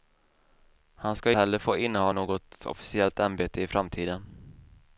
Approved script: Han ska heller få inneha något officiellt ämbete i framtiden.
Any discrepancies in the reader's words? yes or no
no